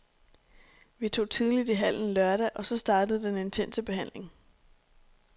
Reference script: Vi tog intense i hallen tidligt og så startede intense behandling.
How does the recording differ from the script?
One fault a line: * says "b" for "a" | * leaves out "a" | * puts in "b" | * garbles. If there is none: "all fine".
* says "tidligt" for "intense"
* says "lørdag" for "tidligt"
* puts in "den"